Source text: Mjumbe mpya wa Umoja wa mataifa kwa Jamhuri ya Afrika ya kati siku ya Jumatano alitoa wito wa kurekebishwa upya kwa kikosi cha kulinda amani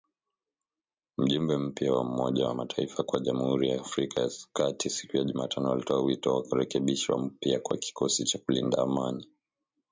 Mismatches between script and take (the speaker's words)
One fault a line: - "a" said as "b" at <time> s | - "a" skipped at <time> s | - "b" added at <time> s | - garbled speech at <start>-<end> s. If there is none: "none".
none